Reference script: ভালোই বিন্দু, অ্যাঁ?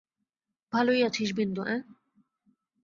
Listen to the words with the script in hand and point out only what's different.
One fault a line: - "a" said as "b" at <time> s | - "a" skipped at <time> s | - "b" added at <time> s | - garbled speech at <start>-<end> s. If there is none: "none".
- "আছিস" added at 1.0 s